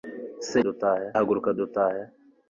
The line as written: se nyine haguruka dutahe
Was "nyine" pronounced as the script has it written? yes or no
no